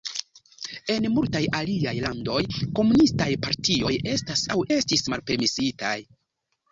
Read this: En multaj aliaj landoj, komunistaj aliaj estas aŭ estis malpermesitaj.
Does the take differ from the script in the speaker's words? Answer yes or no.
yes